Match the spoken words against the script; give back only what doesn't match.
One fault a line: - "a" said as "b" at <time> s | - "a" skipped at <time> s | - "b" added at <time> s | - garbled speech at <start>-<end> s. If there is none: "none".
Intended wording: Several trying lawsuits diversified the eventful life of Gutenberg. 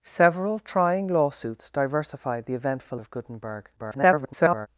- "life" skipped at 3.0 s
- garbled speech at 3.8-4.7 s